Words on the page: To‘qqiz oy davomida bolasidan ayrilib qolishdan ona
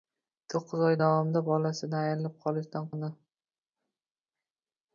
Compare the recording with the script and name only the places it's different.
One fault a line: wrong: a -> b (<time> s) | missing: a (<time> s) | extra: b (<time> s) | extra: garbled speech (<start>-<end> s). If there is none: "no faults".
no faults